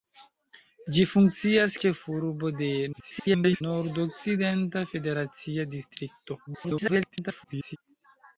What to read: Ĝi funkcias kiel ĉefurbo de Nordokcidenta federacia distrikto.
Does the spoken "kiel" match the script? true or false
false